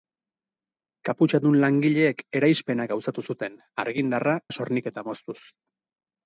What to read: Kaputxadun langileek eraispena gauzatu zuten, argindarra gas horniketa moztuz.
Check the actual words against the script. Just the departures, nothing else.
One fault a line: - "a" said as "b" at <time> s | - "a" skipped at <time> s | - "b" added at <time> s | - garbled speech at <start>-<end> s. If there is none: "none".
none